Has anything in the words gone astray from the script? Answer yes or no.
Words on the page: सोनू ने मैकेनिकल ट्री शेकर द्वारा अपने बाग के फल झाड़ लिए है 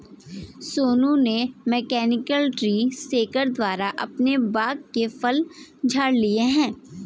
no